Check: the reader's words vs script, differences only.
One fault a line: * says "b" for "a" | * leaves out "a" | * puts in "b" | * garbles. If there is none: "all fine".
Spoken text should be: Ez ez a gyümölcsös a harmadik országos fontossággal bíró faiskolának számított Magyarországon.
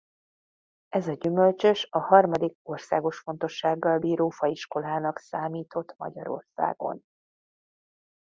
* leaves out "ez"